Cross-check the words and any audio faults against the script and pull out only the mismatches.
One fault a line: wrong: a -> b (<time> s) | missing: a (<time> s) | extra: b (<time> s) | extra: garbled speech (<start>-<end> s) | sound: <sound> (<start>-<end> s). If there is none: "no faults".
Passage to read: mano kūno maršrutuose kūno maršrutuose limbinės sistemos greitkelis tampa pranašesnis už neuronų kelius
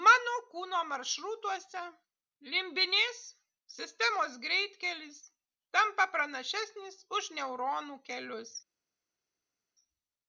missing: kūno maršrutuose (1.8 s)